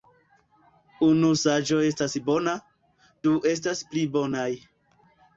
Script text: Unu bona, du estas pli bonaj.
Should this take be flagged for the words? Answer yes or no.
yes